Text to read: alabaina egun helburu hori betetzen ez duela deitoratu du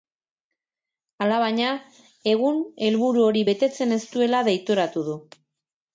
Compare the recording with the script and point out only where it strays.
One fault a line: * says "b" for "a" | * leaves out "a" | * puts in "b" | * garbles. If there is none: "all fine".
all fine